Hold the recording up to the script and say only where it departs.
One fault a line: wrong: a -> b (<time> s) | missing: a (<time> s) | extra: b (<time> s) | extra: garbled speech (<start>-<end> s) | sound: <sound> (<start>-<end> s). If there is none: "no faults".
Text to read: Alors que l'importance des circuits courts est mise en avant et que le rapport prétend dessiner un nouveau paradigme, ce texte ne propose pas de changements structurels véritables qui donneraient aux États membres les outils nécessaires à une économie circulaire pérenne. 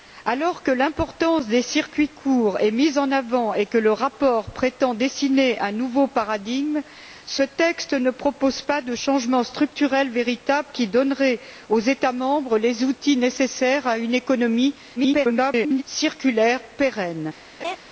extra: garbled speech (15.0-15.8 s)
sound: laugh (17.6-17.8 s)